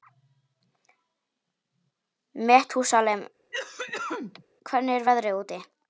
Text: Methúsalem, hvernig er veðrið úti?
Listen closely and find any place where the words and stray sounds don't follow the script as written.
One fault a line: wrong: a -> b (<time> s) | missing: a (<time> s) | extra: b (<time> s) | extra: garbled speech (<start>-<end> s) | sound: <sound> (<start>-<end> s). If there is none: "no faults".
sound: cough (3.5-4.4 s)